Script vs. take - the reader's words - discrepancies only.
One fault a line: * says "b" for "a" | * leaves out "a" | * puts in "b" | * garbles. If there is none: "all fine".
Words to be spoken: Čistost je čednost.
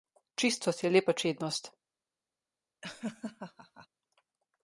* puts in "lepa"